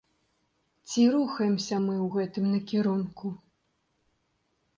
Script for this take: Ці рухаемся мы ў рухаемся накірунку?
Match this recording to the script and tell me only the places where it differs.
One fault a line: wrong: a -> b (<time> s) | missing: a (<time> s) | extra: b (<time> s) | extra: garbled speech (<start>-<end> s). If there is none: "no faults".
wrong: рухаемся -> гэтым (2.2 s)